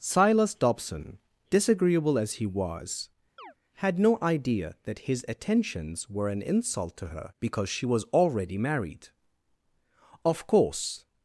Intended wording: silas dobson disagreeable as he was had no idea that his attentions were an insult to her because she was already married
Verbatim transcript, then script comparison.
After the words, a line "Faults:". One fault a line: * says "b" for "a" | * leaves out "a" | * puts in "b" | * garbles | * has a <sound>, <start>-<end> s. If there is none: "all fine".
silas dobson disagreeable as he was had no idea that his attentions were an insult to her because she was already married of course
Faults:
* has a chirp, 3.4-3.5 s
* puts in "of course"